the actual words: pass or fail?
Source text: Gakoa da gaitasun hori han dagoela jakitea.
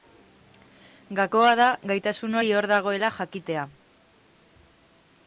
fail